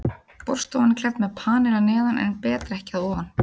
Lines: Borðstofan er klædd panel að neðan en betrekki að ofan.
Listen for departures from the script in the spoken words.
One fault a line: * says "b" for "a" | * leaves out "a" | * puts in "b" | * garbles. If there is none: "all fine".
* puts in "með"